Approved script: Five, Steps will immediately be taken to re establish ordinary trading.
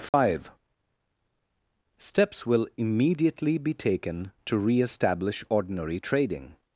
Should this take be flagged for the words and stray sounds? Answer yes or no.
yes